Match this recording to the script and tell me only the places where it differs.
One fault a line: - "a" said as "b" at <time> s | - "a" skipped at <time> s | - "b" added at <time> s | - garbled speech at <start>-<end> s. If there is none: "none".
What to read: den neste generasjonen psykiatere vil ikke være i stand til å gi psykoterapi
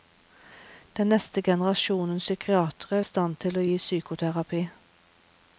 - "vil ikke være" skipped at 3.0 s